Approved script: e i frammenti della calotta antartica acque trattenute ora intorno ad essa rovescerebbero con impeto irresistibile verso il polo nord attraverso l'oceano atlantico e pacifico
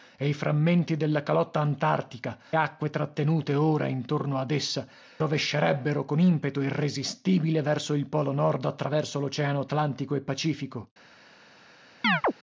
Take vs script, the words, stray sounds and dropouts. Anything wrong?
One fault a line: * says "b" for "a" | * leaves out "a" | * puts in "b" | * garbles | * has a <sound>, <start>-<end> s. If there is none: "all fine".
* has a chirp, 12.0-12.3 s